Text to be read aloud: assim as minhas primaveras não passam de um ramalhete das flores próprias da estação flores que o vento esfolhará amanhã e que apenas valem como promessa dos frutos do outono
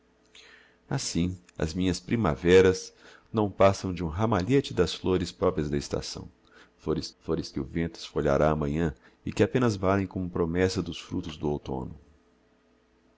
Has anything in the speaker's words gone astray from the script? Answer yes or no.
yes